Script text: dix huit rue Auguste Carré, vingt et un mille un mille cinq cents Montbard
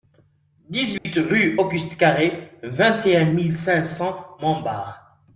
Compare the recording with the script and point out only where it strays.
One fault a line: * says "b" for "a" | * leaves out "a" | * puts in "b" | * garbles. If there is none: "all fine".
* leaves out "un mille"